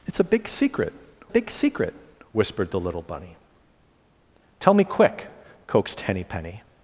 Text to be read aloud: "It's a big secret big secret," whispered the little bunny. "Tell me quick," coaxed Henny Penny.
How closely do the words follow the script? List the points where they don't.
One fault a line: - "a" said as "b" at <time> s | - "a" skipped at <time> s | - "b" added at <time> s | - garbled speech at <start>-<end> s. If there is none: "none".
none